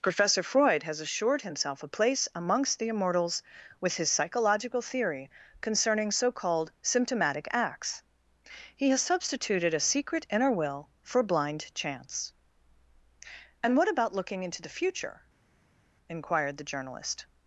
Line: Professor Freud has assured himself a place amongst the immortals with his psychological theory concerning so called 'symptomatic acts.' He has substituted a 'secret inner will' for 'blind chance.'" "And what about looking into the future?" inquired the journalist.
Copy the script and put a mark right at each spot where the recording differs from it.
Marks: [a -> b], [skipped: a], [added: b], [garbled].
Professor Freud has assured himself a place amongst the immortals with his psychological theory concerning so called 'symptomatic acts.' He has substituted a 'secret inner will' for 'blind chance.'" "And what about looking into the future?" inquired the journalist.